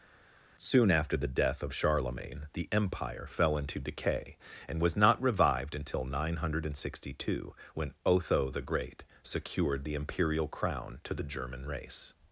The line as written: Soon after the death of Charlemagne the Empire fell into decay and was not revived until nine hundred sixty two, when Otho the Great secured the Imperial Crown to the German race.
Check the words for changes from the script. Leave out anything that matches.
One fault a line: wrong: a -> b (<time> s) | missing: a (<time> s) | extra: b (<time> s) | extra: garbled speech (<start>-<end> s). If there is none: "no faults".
no faults